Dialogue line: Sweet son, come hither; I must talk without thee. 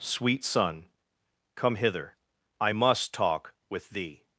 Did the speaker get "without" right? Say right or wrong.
wrong